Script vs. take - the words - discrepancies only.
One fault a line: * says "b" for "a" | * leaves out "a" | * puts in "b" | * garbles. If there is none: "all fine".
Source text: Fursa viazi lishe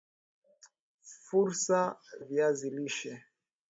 all fine